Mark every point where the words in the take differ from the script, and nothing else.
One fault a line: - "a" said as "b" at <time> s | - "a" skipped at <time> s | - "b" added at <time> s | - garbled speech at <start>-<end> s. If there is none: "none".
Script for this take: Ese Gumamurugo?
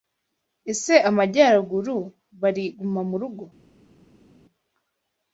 - "Amajyaruguru bari" added at 1.1 s